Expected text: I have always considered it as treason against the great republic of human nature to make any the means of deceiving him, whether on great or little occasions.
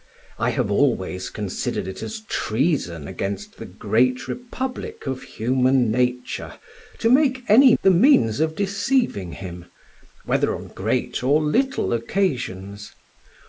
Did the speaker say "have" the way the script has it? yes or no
yes